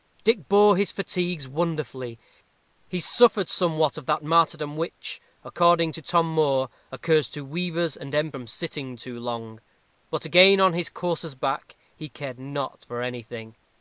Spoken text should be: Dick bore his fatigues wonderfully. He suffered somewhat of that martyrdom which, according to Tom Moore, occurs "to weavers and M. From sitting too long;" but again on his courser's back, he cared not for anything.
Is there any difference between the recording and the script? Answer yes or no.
no